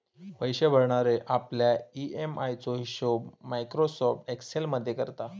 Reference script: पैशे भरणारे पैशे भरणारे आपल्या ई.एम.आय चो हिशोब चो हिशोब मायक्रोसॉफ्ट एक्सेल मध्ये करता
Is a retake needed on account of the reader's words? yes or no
yes